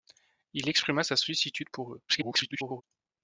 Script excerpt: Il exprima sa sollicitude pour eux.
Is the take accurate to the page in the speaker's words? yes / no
no